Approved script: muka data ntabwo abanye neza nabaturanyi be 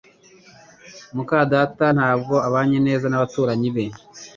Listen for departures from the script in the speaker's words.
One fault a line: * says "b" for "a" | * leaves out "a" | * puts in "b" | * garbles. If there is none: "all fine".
all fine